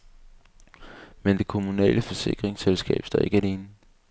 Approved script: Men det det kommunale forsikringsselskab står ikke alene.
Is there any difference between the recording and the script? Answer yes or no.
yes